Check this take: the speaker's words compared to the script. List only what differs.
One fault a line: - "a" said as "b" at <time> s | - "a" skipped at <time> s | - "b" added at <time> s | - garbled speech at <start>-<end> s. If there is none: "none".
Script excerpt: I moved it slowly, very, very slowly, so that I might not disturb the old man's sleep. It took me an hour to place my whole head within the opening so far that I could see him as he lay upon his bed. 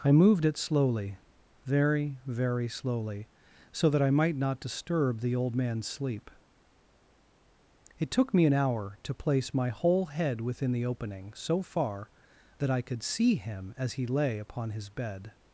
none